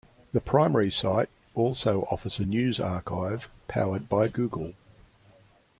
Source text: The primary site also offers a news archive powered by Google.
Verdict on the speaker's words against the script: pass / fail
pass